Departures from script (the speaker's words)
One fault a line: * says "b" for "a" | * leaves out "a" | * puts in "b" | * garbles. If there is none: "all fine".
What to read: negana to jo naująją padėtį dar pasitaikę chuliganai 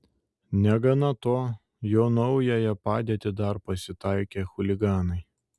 all fine